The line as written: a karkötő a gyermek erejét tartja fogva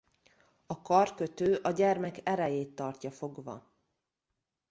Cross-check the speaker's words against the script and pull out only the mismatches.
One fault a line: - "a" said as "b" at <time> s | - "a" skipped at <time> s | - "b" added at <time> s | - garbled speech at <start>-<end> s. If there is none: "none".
none